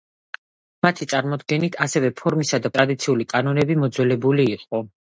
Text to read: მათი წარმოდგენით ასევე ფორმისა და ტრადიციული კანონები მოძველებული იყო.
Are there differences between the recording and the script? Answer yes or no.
no